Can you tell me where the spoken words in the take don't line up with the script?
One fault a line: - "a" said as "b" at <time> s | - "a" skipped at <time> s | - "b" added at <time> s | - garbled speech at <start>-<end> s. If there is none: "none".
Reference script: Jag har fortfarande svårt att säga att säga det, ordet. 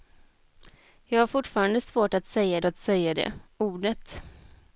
none